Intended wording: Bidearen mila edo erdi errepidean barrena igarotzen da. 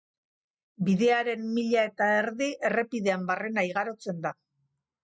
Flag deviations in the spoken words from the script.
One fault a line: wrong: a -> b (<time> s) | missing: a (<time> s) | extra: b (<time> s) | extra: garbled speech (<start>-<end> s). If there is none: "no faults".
wrong: edo -> eta (1.9 s)